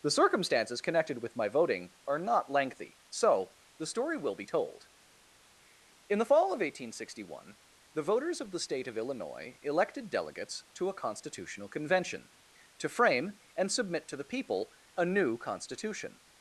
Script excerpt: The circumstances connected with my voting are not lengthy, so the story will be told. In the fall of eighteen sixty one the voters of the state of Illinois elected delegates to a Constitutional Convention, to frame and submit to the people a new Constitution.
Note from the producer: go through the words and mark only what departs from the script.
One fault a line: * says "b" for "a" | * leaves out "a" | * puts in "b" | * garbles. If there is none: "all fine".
all fine